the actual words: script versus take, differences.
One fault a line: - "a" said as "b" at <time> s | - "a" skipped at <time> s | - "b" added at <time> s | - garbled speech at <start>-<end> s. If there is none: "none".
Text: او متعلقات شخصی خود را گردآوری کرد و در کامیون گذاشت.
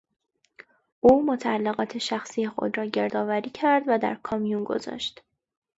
none